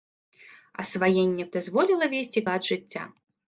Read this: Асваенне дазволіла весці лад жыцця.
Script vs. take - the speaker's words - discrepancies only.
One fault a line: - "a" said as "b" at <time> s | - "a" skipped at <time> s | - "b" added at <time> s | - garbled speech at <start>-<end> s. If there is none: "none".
none